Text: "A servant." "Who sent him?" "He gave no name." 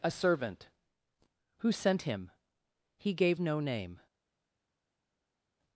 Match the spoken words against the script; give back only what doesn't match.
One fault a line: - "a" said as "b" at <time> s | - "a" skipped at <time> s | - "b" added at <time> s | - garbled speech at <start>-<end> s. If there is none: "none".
none